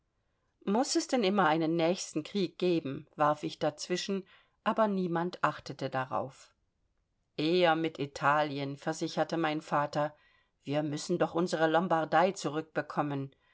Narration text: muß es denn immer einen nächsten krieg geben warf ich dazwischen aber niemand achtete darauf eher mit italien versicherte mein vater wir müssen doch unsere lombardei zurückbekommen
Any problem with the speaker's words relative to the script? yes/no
no